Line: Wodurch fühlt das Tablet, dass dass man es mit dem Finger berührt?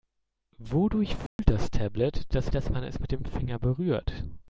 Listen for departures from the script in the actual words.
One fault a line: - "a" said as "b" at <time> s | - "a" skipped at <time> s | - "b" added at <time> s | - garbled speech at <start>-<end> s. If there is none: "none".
none